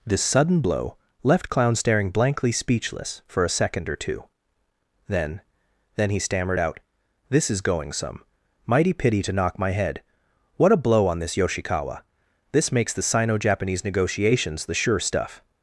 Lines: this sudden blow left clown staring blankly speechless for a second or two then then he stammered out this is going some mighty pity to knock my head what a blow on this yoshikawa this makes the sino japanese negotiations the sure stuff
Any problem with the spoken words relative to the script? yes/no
no